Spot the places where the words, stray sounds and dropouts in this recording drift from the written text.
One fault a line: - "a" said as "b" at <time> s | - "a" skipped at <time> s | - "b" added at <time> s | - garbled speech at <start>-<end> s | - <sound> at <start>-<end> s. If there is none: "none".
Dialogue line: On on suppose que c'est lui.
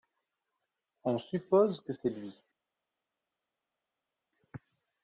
- "on" skipped at 1.2 s